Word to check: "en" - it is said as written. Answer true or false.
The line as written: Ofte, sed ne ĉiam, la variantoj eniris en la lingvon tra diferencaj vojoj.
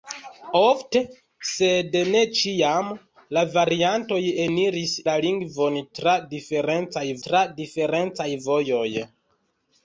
false